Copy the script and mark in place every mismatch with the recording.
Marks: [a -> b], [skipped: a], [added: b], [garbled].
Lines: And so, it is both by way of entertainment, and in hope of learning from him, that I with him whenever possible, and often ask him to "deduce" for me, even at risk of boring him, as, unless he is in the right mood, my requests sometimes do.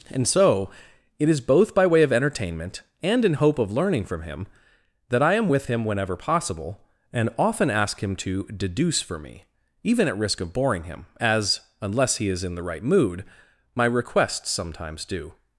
And so, it is both by way of entertainment, and in hope of learning from him, that I [added: am] with him whenever possible, and often ask him to "deduce" for me, even at risk of boring him, as, unless he is in the right mood, my requests sometimes do.